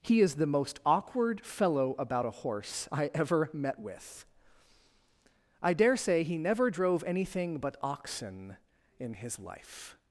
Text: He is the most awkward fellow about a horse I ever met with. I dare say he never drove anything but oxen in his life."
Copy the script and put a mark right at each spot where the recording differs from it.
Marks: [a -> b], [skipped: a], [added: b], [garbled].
He is the most awkward fellow about a horse I ever met with. I dare say he never drove anything but oxen in his life."